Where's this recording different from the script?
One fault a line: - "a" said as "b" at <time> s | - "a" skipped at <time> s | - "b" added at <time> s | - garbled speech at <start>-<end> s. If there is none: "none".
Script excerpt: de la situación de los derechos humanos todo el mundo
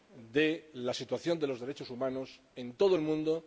- "en" added at 2.5 s